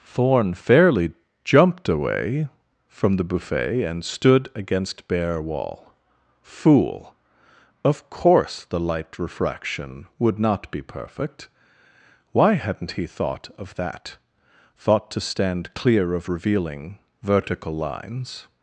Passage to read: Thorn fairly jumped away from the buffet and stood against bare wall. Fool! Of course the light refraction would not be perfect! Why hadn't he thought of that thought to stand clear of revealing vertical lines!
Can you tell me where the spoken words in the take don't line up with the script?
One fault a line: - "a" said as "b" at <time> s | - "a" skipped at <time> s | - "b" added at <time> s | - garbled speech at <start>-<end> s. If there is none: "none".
none